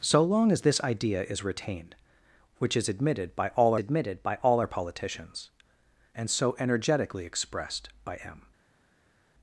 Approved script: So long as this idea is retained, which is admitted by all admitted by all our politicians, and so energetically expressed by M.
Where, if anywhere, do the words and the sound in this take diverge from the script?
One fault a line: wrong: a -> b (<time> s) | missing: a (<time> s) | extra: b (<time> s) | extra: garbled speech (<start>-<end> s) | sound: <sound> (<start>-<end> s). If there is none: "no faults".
no faults